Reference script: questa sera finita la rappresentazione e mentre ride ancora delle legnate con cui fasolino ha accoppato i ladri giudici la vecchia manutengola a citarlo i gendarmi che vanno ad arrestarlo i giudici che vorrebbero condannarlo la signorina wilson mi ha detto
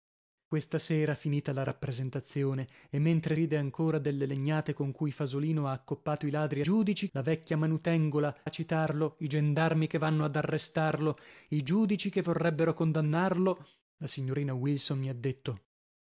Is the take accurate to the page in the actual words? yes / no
yes